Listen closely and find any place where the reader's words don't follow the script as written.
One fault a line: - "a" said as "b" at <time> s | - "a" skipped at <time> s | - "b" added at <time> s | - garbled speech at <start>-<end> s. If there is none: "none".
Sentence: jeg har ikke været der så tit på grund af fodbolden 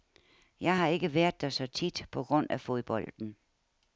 none